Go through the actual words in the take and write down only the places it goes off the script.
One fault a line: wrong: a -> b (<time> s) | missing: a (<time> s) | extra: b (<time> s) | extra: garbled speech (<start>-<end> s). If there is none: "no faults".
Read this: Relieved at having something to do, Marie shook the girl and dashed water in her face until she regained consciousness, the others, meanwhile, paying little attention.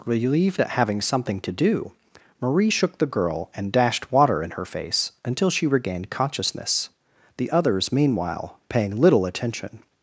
no faults